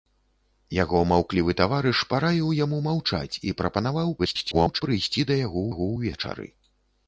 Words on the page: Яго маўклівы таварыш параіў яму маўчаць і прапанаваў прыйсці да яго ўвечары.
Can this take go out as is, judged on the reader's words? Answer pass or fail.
fail